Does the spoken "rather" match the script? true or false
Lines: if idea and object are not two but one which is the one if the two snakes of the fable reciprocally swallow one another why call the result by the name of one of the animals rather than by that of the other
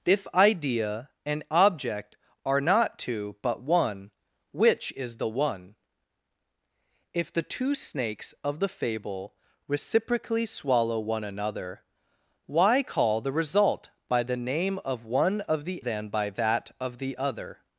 false